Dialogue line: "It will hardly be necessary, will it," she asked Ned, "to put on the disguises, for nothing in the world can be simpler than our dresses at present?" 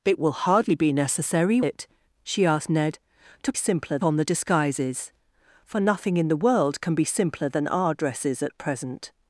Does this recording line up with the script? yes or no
no